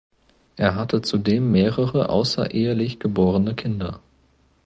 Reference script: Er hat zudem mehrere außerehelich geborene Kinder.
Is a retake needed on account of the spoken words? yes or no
yes